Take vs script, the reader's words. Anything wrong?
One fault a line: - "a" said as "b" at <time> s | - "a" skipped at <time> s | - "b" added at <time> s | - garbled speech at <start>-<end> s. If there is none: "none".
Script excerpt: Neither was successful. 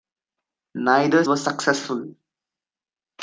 none